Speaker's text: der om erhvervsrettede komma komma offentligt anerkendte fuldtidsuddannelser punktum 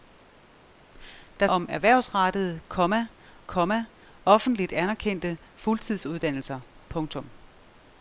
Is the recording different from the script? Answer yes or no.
no